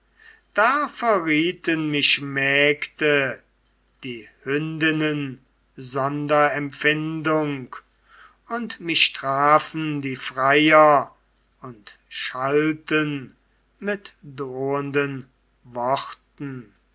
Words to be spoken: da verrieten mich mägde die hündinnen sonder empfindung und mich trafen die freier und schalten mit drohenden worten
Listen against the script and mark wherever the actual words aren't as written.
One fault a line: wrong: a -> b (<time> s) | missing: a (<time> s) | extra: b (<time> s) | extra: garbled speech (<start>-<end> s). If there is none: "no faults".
no faults